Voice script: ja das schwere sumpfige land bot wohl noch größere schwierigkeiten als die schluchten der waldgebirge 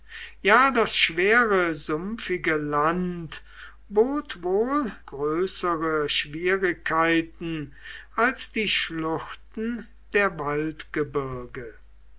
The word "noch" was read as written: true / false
false